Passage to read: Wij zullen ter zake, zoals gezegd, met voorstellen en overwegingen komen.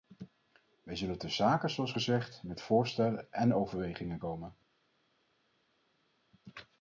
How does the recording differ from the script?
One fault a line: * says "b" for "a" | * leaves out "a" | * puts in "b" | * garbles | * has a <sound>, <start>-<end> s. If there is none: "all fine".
all fine